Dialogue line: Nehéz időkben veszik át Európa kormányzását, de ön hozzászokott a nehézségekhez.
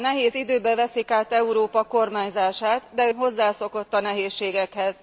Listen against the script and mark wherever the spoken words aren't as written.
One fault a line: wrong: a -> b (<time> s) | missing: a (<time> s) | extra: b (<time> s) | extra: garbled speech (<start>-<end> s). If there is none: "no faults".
missing: ön (3.1 s)